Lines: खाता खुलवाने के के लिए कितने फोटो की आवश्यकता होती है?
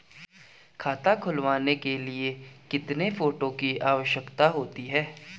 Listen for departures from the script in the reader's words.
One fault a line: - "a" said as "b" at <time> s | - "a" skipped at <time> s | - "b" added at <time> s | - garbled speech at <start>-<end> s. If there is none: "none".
- "के" skipped at 2.0 s